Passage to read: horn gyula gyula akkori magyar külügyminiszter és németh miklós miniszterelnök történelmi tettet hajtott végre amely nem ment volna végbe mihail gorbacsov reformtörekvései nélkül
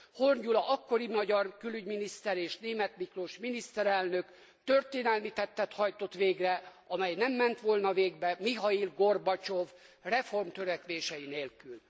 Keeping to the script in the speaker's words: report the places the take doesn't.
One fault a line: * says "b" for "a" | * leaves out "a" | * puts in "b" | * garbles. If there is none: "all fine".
* leaves out "gyula"